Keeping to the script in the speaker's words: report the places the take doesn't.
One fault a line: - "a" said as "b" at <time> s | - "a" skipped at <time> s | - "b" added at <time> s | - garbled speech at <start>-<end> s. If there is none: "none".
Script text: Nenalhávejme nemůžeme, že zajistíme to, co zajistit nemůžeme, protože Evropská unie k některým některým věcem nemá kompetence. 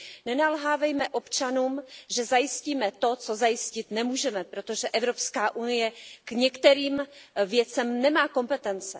- "nemůžeme" said as "občanům" at 1.1 s
- "některým" skipped at 7.1 s